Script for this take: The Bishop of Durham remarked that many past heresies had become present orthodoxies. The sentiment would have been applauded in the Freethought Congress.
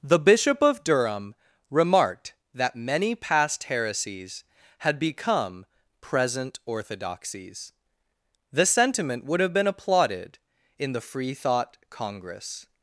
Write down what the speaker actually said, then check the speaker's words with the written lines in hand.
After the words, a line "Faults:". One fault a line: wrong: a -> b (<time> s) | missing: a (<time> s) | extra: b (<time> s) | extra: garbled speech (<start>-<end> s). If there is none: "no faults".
The Bishop of Durham remarked that many past heresies had become present orthodoxies. The sentiment would have been applauded in the Freethought Congress.
Faults:
no faults